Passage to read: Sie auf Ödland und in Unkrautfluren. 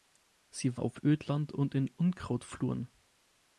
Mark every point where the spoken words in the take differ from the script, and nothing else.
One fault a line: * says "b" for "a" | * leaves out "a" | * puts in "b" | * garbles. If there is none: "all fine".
all fine